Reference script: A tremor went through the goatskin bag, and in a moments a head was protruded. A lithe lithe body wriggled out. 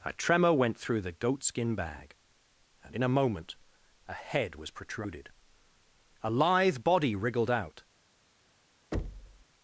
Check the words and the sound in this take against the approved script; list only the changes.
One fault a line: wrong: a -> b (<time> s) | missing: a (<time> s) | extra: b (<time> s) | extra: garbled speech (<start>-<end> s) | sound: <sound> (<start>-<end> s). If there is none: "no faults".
wrong: moments -> moment (3.1 s)
missing: lithe (6.8 s)
sound: thud (8.9-9.4 s)